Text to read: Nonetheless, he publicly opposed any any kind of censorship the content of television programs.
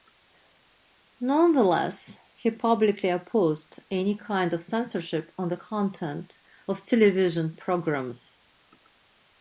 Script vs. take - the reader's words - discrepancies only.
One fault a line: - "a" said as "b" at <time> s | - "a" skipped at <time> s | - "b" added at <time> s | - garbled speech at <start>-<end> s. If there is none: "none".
- "any" skipped at 4.2 s
- "on" added at 5.4 s